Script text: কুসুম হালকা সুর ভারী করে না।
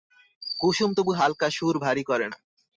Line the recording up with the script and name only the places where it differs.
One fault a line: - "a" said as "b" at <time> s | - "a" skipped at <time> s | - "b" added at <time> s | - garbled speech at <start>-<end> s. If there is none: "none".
- "তবু" added at 1.0 s